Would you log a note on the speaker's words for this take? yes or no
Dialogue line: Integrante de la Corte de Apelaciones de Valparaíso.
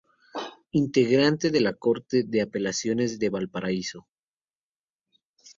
no